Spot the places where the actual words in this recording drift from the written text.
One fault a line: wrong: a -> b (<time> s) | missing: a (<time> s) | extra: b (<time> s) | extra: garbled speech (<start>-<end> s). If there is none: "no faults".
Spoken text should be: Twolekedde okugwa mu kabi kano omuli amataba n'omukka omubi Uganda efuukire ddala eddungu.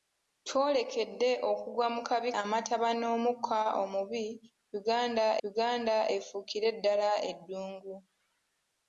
missing: kano omuli (2.3 s)
extra: Uganda (5.5 s)